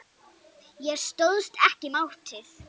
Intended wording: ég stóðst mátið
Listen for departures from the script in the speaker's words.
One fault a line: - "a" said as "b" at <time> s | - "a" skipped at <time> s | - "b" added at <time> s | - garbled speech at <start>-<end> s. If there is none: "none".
- "ekki" added at 1.7 s